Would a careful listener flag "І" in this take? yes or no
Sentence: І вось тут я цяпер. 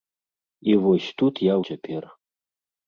no